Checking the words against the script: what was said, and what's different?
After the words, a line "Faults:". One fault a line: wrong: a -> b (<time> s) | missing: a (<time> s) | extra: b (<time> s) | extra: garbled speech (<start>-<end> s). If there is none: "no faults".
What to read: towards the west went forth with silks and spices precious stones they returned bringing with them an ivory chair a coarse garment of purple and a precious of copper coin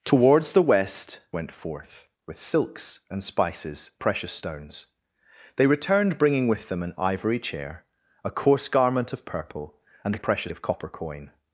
towards the west went forth with silks and spices precious stones they returned bringing with them an ivory chair a coarse garment of purple and a precious of copper coin
Faults:
no faults